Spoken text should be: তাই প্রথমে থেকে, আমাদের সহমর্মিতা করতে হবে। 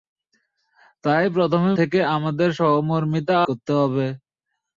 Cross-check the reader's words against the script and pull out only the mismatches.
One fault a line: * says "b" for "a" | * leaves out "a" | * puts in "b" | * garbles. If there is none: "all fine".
all fine